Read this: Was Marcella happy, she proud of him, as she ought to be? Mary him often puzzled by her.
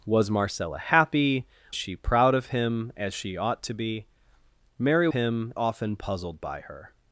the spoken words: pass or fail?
pass